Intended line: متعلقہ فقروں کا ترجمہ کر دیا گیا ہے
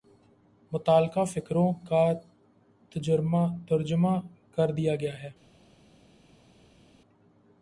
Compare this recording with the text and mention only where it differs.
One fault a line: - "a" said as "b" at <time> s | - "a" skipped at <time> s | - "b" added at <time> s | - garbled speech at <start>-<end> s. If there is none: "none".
none